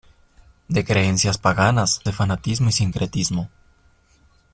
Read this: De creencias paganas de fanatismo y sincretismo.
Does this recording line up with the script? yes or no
yes